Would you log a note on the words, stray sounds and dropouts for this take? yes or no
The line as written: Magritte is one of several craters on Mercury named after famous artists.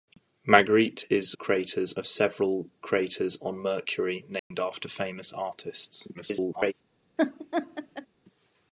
yes